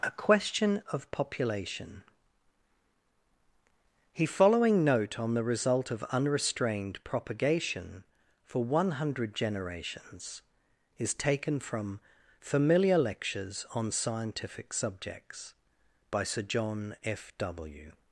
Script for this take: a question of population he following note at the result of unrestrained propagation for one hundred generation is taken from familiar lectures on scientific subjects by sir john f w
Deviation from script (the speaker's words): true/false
true